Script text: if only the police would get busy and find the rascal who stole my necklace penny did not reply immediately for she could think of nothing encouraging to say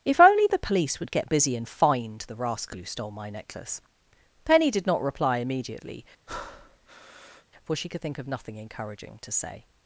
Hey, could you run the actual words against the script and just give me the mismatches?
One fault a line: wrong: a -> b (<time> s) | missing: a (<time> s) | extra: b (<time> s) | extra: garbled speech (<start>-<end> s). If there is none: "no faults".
no faults